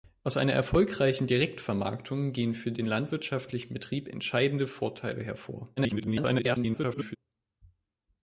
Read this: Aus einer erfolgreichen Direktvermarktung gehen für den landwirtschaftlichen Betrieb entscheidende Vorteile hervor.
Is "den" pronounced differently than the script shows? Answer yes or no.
no